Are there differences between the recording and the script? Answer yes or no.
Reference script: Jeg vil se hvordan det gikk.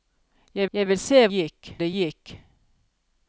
yes